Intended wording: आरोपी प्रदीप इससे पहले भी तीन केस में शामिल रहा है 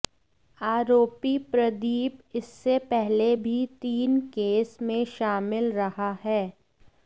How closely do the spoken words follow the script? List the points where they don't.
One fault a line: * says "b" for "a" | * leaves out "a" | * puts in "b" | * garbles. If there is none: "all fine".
all fine